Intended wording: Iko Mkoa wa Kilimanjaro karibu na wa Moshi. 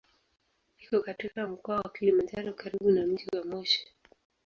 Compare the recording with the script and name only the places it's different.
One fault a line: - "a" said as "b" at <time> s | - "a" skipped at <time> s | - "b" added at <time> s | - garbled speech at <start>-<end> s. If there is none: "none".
- "katika" added at 1.0 s
- "mji" added at 3.1 s